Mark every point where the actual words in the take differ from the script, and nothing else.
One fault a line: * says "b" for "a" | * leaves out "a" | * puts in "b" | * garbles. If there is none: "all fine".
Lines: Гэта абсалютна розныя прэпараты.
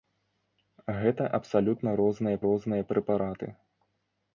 * puts in "розныя"